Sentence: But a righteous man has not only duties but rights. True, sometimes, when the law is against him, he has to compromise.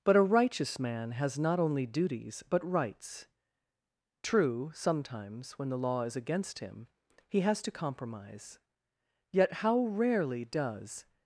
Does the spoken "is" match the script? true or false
true